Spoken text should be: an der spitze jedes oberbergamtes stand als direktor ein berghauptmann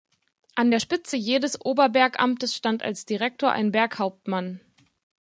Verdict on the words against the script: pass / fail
pass